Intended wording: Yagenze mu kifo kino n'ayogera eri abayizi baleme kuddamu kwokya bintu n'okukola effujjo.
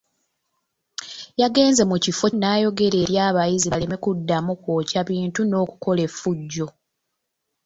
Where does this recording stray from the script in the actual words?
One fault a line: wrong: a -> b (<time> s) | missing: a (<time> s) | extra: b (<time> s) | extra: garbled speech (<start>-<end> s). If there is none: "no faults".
missing: kino (2.3 s)